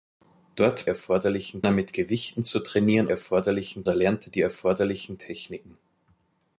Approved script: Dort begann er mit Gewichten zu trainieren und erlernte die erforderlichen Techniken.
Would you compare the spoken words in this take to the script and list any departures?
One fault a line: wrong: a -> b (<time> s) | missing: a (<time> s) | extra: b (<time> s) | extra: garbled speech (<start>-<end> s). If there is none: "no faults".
wrong: begann -> erforderlichen (0.9 s)
wrong: und -> erforderlichen (3.1 s)